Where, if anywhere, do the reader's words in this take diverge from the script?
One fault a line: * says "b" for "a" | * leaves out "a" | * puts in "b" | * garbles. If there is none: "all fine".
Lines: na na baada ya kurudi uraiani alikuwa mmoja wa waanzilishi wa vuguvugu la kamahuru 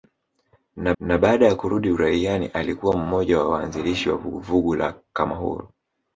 all fine